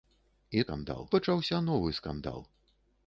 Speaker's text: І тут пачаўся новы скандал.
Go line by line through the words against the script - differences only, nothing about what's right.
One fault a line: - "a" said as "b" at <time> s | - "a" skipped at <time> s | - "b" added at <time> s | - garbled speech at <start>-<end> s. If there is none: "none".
- "тут" said as "скандал" at 0.7 s